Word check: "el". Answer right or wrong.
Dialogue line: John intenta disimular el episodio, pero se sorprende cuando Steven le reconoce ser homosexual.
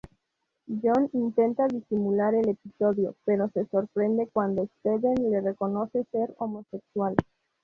right